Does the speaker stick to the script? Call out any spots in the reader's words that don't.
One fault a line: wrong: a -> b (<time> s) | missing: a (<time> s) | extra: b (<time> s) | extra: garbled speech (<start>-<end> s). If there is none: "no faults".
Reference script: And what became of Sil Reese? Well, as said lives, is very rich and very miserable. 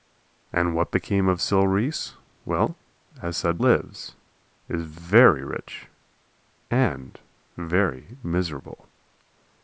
no faults